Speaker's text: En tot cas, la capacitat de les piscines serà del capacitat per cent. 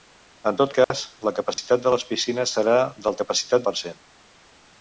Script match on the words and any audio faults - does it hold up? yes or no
no